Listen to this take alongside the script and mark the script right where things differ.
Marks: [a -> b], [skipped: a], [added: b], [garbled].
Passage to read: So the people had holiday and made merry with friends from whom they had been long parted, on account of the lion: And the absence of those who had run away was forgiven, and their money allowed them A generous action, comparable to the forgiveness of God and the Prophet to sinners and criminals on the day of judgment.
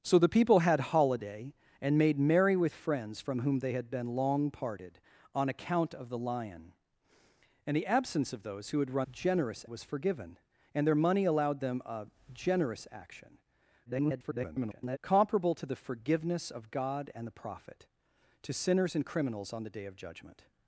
So the people had holiday and made merry with friends from whom they had been long parted, on account of the lion: And the absence of those who had run [away -> generous] was forgiven, and their money allowed them A generous action, [garbled] comparable to the forgiveness of God and the Prophet to sinners and criminals on the day of judgment.